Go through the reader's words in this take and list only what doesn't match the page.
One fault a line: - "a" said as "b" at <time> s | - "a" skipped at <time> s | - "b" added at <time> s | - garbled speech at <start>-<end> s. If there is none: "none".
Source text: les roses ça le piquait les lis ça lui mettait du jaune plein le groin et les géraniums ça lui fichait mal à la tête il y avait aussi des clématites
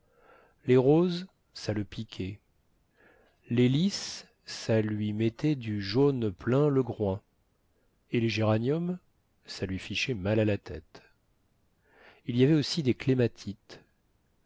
none